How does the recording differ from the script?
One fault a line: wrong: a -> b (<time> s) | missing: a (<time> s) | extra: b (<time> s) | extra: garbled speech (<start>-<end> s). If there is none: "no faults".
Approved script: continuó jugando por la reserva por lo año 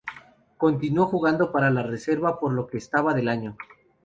wrong: por -> para (1.5 s)
extra: que restaba del (2.6 s)